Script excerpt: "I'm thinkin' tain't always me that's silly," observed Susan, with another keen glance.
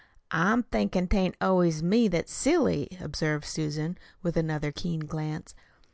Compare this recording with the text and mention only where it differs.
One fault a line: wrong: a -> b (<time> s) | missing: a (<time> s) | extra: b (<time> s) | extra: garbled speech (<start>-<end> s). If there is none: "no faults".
no faults